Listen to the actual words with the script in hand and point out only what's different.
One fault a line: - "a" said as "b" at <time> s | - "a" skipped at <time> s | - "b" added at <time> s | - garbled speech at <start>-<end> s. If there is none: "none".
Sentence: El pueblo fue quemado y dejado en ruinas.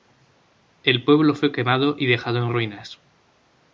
none